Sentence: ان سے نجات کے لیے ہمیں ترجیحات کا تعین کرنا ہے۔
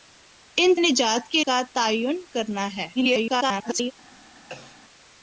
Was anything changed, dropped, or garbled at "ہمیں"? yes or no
yes